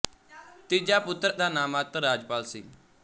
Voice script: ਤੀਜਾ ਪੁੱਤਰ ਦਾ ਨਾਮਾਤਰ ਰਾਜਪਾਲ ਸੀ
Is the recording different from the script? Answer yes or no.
no